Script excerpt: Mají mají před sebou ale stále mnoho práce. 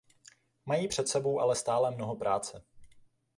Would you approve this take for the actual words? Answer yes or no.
no